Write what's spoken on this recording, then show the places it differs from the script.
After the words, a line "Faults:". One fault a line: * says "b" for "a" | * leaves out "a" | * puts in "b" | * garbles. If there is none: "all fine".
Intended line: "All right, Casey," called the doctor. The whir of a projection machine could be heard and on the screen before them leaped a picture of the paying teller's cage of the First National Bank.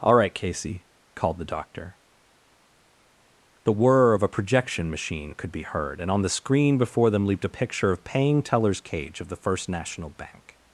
"All right, Casey," called the doctor. The whir of a projection machine could be heard and on the screen before them leaped a picture of paying teller's cage of the First National Bank.
Faults:
* leaves out "the"